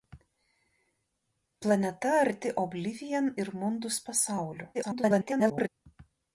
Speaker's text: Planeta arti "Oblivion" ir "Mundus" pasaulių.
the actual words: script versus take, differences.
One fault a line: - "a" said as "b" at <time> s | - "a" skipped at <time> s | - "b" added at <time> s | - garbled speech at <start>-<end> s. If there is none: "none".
- garbled speech at 4.7-5.7 s